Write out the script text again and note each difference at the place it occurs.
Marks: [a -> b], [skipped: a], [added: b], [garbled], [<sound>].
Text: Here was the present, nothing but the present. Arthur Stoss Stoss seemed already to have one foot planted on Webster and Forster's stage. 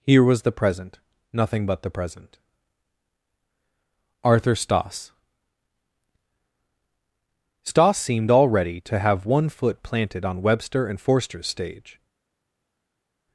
Here was the present, nothing but the present. Arthur Stoss Stoss seemed already to have one foot planted on Webster and Forster's stage.